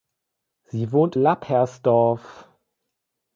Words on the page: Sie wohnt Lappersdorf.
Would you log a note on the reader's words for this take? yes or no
no